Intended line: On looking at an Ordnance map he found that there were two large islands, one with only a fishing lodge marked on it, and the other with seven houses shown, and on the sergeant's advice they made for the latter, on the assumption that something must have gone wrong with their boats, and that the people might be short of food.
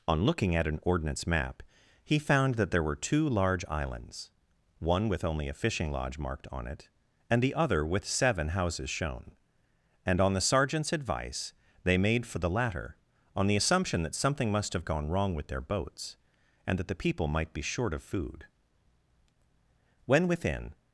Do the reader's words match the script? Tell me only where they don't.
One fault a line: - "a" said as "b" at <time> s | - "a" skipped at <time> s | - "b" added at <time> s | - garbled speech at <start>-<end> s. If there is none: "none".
- "When within" added at 20.1 s